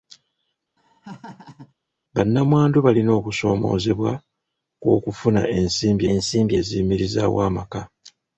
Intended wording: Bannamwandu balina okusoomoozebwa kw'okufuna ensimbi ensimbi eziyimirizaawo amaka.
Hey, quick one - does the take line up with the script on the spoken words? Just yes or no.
yes